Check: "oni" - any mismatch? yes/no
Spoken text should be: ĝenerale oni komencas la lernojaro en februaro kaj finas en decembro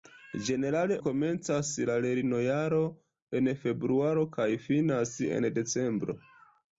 yes